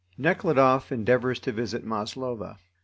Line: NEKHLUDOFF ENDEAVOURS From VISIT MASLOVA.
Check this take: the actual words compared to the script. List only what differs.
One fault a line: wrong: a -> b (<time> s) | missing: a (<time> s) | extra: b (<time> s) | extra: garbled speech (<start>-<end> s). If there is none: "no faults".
wrong: From -> TO (1.4 s)